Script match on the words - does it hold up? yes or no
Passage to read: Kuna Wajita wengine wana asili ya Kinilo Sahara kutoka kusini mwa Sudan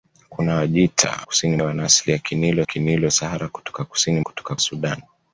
no